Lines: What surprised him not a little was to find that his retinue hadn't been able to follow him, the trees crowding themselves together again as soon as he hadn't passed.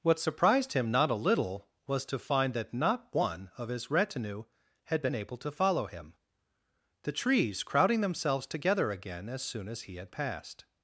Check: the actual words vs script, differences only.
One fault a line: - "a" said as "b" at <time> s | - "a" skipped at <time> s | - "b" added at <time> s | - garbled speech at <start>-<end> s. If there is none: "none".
- "not one of" added at 2.7 s
- "hadn't" said as "had" at 4.8 s
- "hadn't" said as "had" at 10.0 s